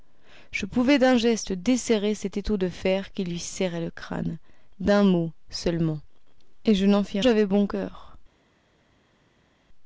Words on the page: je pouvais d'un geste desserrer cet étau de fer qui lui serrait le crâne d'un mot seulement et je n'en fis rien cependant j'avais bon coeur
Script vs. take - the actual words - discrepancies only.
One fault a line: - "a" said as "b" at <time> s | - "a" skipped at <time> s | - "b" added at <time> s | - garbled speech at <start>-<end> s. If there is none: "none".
- "rien cependant" skipped at 7.2 s